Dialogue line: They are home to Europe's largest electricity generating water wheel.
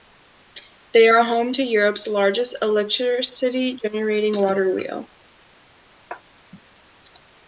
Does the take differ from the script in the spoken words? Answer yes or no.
no